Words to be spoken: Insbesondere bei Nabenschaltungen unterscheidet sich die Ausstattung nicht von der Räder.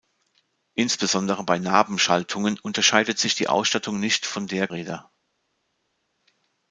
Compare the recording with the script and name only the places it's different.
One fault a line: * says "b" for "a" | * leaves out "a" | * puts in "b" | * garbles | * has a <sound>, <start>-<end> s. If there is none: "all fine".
all fine